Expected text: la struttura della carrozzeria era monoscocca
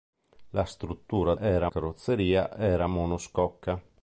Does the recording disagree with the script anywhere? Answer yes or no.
yes